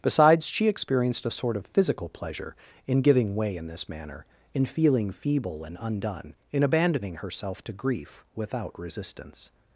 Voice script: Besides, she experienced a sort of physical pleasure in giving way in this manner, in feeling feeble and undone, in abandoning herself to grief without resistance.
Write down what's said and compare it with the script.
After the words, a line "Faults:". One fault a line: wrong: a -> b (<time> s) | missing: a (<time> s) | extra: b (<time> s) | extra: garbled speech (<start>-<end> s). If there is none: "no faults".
Besides, she experienced a sort of physical pleasure in giving way in this manner, in feeling feeble and undone, in abandoning herself to grief without resistance.
Faults:
no faults